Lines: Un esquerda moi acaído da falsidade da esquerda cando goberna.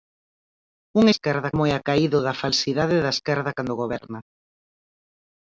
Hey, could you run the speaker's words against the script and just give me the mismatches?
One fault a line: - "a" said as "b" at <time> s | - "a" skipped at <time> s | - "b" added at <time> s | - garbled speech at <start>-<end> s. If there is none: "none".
none